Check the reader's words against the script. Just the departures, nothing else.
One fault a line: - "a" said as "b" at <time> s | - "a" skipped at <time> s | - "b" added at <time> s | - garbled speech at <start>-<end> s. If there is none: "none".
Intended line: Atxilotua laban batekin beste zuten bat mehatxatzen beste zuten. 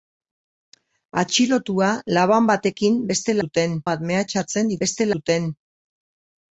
none